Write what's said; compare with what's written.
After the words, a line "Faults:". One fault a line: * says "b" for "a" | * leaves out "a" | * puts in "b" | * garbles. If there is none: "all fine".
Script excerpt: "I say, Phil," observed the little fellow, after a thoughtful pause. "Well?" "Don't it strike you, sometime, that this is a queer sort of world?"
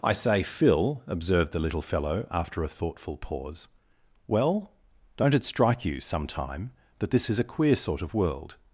"I say, Phil," observed the little fellow, after a thoughtful pause. "Well?" "Don't it strike you, sometime, that this is a queer sort of world?"
Faults:
all fine